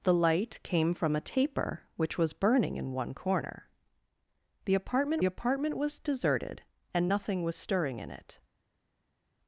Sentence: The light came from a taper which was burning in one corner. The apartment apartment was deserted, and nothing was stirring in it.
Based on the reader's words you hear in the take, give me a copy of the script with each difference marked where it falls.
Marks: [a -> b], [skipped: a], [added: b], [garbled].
The light came from a taper which was burning in one corner. The apartment apartment was deserted, and nothing was stirring in it.